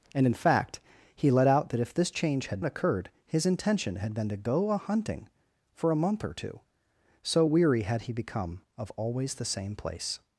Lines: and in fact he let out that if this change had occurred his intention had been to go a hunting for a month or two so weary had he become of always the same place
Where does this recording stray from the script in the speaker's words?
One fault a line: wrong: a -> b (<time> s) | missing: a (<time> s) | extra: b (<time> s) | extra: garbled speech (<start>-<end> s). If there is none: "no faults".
no faults